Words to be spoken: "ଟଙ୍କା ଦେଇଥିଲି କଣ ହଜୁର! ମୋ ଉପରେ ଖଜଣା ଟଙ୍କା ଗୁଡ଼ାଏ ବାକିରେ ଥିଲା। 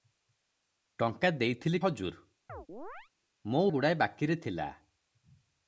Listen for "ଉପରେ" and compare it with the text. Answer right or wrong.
wrong